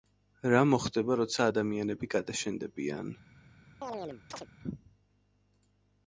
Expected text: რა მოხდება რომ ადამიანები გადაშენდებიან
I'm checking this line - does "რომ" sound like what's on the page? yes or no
no